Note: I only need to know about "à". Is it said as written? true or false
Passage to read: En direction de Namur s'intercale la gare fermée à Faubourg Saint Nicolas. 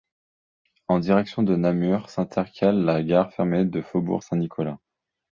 false